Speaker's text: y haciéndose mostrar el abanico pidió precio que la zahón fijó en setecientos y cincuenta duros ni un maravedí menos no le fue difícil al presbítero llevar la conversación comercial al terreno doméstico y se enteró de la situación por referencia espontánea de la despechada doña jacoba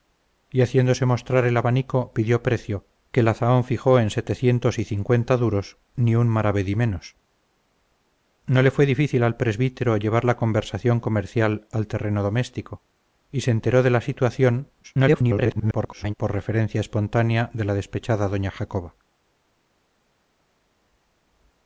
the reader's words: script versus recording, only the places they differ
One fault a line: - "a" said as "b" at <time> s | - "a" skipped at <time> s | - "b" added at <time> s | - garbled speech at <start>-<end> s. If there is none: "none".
- garbled speech at 14.8-16.1 s